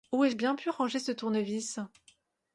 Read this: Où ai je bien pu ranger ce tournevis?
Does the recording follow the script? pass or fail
pass